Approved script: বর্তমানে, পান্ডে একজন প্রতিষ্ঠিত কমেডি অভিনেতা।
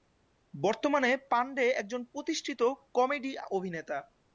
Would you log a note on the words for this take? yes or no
no